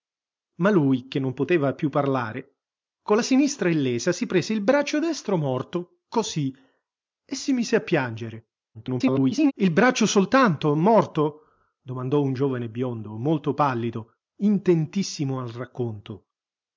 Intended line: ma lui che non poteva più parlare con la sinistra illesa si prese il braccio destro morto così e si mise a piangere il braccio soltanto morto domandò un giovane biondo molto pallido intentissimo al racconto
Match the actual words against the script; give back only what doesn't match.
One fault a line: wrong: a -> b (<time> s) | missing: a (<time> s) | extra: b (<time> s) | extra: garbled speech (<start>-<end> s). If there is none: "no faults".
extra: garbled speech (8.7-9.5 s)